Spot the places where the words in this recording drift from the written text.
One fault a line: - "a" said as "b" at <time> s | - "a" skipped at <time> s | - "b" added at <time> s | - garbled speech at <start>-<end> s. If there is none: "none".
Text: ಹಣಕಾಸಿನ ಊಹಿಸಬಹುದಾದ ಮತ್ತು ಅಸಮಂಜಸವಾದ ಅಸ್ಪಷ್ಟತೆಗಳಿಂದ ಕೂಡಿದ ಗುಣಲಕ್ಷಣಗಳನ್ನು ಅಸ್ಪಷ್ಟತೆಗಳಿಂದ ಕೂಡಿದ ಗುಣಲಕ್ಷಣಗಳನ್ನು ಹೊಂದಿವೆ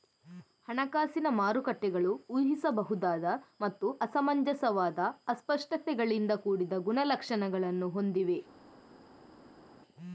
- "ಮಾರುಕಟ್ಟೆಗಳು" added at 1.4 s
- "ಅಸ್ಪಷ್ಟತೆಗಳಿಂದ ಕೂಡಿದ ಗುಣಲಕ್ಷಣಗಳನ್ನು" skipped at 7.9 s